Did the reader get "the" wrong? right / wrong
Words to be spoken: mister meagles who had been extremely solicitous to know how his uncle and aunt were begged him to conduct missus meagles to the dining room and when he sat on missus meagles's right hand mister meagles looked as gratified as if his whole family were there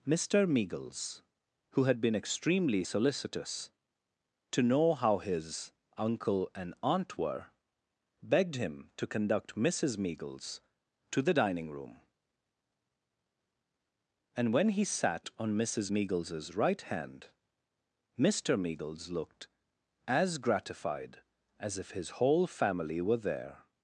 right